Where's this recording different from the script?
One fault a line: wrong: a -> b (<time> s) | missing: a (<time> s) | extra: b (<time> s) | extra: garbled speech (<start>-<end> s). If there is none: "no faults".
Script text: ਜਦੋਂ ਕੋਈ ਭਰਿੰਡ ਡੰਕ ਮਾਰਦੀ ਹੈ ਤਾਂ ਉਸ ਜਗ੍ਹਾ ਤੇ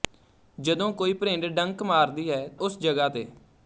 missing: ਤਾਂ (2.5 s)